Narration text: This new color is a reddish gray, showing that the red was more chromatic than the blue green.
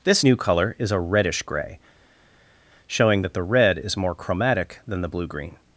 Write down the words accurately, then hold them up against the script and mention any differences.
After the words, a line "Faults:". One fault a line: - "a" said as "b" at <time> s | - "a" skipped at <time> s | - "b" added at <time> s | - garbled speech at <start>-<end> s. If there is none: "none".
This new color is a reddish gray, showing that the red is more chromatic than the blue green.
Faults:
- "was" said as "is" at 3.8 s